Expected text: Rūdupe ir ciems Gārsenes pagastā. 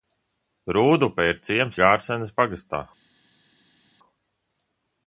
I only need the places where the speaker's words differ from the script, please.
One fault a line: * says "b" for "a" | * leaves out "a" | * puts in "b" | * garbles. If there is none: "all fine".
all fine